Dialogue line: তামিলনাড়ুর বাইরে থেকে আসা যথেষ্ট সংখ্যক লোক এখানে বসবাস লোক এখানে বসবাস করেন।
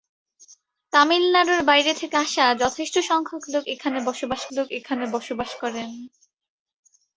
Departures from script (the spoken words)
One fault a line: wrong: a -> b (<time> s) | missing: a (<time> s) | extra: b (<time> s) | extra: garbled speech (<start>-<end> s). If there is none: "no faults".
no faults